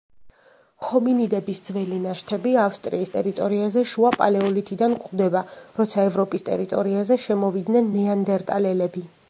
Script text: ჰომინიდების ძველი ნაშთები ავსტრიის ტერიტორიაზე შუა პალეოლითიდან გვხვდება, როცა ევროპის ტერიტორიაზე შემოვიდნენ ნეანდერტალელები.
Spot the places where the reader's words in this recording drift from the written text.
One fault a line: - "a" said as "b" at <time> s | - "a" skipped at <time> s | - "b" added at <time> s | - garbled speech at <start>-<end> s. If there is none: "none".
none